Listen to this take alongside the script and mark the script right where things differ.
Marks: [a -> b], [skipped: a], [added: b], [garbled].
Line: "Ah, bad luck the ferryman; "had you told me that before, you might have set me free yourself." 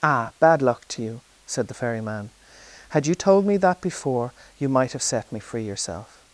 "Ah, bad luck [added: to you said] the ferryman; "had you told me that before, you might have set me free yourself."